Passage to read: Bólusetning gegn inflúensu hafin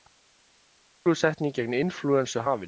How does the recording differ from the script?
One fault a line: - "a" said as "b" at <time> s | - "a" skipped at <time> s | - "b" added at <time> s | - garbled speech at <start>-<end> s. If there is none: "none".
none